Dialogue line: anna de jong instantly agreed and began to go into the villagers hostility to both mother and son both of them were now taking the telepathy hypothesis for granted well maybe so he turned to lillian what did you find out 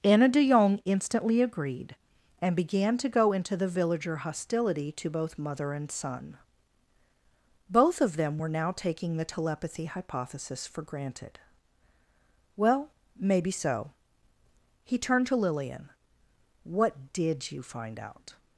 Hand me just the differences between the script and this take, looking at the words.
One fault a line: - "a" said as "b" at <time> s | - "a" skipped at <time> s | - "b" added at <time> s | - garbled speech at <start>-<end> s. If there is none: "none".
- "villagers" said as "villager" at 3.7 s